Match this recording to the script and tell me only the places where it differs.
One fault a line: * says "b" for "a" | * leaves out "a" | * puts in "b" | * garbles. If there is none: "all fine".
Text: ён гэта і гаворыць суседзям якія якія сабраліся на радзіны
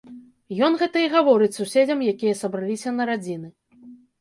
* leaves out "якія"